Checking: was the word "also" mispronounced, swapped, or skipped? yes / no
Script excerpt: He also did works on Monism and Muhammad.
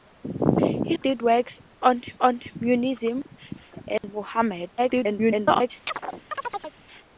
yes